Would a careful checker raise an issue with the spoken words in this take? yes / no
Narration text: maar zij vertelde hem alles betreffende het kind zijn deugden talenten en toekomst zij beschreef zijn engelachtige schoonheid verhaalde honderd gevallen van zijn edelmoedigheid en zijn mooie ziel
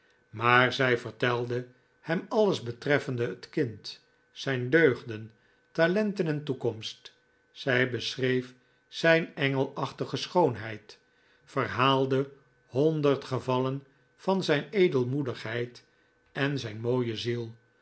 no